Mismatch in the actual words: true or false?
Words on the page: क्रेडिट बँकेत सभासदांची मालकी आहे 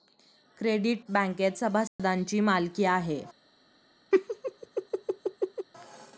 false